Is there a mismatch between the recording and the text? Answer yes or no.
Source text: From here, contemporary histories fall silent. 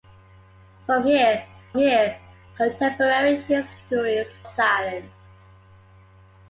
yes